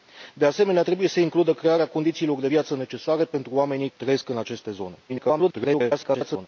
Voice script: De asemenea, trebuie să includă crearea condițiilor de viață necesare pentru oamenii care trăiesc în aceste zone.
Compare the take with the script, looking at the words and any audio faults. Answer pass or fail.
fail